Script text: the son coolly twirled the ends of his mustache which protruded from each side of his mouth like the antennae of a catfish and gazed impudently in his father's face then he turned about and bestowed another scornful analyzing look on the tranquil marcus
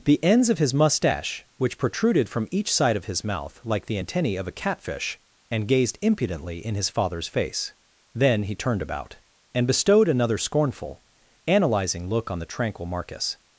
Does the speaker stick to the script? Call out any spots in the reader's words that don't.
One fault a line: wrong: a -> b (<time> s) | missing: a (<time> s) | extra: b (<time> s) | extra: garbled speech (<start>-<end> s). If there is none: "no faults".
missing: son coolly twirled the (0.2 s)